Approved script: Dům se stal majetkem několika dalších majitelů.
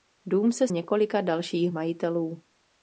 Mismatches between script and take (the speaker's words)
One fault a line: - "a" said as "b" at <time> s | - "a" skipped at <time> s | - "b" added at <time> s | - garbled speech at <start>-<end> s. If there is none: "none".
- "stal majetkem" skipped at 0.7 s